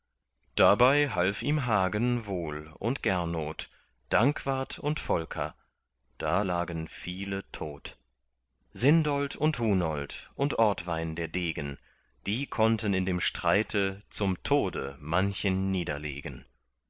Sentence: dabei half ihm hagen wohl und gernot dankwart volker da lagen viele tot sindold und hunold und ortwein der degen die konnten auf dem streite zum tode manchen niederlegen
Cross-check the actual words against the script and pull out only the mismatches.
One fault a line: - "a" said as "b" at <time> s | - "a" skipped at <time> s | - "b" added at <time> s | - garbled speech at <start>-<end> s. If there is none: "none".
- "und" added at 4.8 s
- "auf" said as "in" at 12.9 s